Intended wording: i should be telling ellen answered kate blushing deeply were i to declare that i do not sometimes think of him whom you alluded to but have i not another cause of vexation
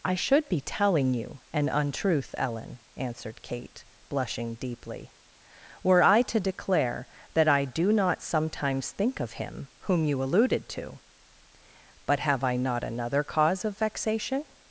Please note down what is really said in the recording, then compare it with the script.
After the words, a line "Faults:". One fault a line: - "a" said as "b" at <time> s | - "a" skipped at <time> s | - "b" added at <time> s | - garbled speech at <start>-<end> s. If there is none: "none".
i should be telling you an untruth ellen answered kate blushing deeply were i to declare that i do not sometimes think of him whom you alluded to but have i not another cause of vexation
Faults:
- "you an untruth" added at 1.1 s